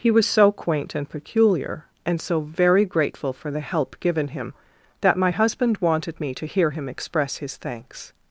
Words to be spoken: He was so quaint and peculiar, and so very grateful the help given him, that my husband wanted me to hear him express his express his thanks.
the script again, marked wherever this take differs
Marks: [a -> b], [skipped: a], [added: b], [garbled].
He was so quaint and peculiar, and so very grateful [added: for] the help given him, that my husband wanted me to hear him express his [skipped: express his] thanks.